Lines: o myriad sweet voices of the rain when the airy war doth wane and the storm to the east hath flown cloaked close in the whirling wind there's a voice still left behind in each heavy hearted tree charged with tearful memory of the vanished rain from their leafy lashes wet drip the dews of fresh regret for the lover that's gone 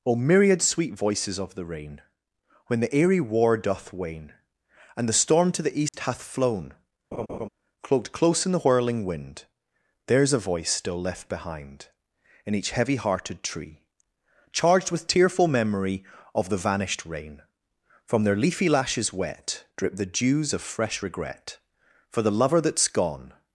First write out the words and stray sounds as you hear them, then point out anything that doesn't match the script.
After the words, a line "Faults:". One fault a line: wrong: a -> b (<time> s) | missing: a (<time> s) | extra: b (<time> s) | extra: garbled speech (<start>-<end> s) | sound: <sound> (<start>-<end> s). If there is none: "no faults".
o myriad sweet voices of the rain when the airy war doth wane and the storm to the east hath flown cloaked close in the whirling wind there's a voice still left behind in each heavy hearted tree charged with tearful memory of the vanished rain from their leafy lashes wet drip the dews of fresh regret for the lover that's gone
Faults:
sound: dropout (5.9-5.9 s)
sound: laugh (7.1-7.5 s)